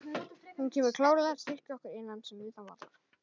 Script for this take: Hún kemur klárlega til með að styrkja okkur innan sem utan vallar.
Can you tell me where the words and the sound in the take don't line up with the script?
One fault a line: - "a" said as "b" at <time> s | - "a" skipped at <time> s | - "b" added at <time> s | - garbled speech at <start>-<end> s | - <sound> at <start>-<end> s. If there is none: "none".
- "til með" skipped at 1.4 s